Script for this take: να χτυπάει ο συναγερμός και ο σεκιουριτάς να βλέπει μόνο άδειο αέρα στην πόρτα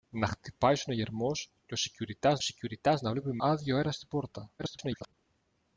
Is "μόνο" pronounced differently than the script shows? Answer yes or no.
yes